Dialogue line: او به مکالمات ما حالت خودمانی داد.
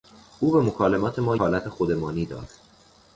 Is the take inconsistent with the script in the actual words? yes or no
no